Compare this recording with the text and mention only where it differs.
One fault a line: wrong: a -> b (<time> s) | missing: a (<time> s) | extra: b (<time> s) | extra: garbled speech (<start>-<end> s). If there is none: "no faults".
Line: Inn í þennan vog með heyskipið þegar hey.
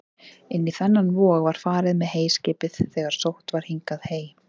extra: var farið (1.5 s)
extra: sótt var hingað (3.2 s)